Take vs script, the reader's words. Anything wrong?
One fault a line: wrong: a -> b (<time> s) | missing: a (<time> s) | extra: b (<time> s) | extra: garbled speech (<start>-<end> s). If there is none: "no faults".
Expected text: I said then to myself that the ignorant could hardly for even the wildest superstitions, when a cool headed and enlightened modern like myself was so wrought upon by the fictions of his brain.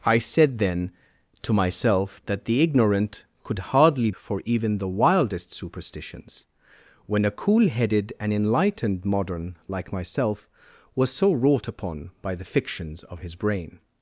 no faults